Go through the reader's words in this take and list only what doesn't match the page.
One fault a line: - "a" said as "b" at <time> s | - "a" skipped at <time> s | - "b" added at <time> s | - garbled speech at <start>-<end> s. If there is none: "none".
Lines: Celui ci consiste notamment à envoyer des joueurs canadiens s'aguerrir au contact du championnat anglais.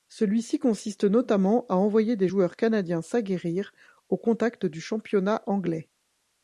none